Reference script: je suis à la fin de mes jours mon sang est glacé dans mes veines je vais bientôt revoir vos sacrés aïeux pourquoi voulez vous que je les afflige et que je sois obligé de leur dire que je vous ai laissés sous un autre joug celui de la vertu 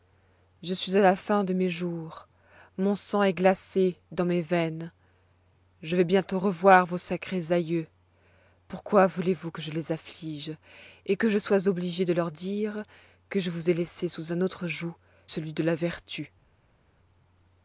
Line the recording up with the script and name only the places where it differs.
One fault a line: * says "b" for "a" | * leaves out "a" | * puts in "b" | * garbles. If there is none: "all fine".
all fine